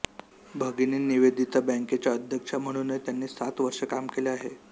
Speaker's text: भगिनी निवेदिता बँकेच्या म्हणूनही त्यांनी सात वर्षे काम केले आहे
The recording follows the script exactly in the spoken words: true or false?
false